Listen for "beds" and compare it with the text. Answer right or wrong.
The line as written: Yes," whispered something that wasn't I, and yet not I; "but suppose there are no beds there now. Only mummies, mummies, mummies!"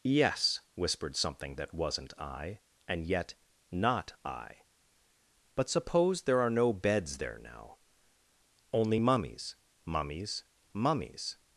right